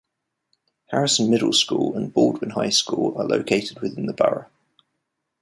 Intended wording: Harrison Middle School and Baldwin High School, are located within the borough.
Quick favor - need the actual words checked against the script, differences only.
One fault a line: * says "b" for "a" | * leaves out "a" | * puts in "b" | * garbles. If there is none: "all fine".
all fine